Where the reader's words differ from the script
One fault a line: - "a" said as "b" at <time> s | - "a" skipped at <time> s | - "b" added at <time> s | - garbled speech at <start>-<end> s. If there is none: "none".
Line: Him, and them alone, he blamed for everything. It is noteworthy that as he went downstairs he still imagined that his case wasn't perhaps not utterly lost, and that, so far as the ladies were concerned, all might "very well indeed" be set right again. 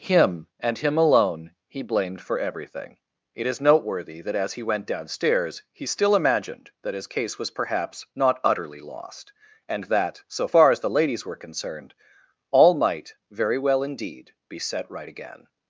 - "them" said as "him" at 0.8 s
- "wasn't" said as "was" at 7.4 s